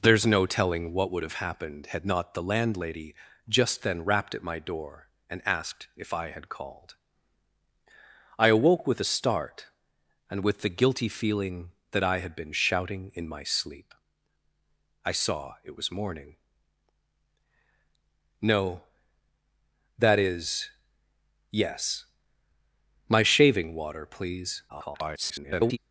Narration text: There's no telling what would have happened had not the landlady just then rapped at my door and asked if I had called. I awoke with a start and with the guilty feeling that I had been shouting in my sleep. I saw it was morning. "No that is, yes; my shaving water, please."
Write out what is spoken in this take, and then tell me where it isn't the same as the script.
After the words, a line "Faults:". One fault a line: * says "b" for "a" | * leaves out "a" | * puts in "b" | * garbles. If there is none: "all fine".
There's no telling what would have happened had not the landlady just then rapped at my door and asked if I had called. I awoke with a start and with the guilty feeling that I had been shouting in my sleep. I saw it was morning. "No that is, yes; my shaving water, please." [garbled]
Faults:
* garbles